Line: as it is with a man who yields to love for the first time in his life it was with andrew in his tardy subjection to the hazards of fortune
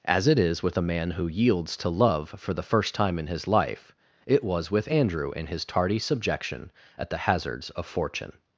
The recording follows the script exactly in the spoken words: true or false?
false